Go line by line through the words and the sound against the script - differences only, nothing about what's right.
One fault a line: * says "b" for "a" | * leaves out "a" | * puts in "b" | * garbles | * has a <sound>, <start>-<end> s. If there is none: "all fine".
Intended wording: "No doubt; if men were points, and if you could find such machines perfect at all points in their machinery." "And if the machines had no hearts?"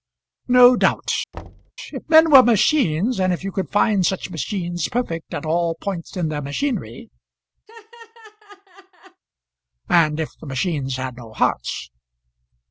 * has a thud, 1.3-1.7 s
* says "machines" for "points"
* has a laugh, 7.7-9.2 s